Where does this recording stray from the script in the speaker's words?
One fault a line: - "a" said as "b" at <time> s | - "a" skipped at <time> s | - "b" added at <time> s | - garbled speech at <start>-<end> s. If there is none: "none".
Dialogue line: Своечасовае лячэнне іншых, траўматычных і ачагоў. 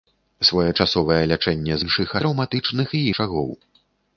none